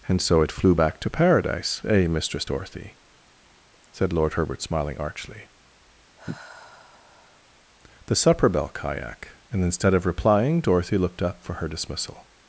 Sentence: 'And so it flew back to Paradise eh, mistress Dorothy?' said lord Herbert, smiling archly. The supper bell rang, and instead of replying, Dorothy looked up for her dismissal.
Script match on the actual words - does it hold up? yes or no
no